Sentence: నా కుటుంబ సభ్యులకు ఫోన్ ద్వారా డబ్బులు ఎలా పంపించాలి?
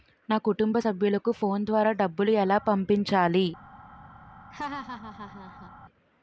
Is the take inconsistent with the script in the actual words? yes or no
no